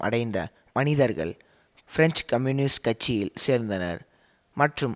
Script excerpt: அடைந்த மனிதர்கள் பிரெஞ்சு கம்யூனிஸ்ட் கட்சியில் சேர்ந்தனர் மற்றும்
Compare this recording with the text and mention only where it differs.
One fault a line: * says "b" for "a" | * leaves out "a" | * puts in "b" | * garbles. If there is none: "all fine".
all fine